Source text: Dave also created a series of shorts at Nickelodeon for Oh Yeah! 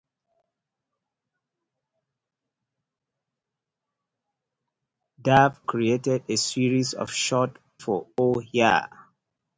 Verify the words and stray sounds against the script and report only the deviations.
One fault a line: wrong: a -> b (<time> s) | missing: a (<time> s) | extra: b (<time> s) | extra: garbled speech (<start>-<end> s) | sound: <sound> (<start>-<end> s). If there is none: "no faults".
missing: also (5.6 s)
missing: at Nickelodeon (7.6 s)